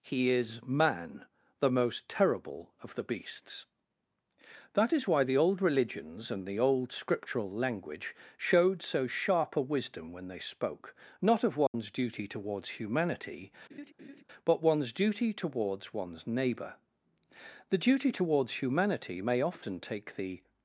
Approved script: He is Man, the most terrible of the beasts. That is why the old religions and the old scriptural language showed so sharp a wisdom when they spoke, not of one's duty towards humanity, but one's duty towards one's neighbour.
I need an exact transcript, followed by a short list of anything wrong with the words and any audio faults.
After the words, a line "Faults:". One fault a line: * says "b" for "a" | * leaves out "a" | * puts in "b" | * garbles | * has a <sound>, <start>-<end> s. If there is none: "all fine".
He is Man, the most terrible of the beasts. That is why the old religions and the old scriptural language showed so sharp a wisdom when they spoke, not of one's duty towards humanity, but one's duty towards one's neighbour. The duty towards humanity may often take the
Faults:
* has a dropout, 11.7-11.7 s
* has a laugh, 13.7-14.2 s
* puts in "The duty towards humanity may often take the"